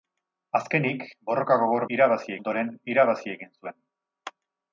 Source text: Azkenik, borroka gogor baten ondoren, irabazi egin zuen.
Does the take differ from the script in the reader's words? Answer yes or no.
yes